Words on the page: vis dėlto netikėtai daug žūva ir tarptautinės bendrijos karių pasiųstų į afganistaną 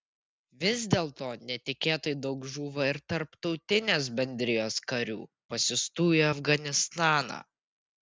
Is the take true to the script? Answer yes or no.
yes